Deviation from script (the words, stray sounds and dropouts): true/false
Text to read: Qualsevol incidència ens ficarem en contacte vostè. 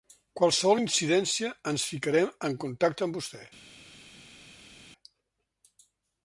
true